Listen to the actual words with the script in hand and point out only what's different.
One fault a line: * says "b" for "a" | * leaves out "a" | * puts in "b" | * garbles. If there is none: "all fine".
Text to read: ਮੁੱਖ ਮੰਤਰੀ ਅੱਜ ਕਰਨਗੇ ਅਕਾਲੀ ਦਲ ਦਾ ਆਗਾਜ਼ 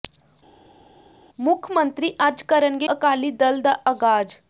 all fine